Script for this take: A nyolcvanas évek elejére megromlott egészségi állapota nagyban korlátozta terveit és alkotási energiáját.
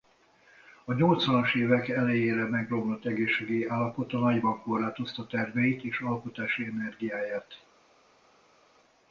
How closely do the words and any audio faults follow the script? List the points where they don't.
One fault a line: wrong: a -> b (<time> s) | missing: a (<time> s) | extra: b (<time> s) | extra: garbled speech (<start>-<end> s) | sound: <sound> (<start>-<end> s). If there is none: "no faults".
no faults